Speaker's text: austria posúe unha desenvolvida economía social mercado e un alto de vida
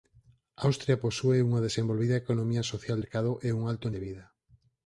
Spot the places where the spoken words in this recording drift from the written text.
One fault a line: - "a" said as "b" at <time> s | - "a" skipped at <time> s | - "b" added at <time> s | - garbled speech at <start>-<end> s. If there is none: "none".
none